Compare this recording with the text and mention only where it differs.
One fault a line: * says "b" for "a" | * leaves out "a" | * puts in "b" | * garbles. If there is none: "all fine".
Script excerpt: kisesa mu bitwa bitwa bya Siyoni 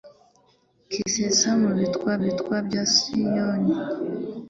all fine